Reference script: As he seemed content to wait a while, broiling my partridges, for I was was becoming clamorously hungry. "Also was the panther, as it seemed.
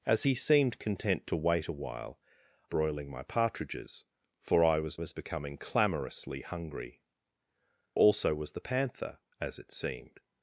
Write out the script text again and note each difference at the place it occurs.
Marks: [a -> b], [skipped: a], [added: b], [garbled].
As he seemed content to wait a while, broiling my partridges, for I was was becoming clamorously hungry. "Also was the panther, as it seemed.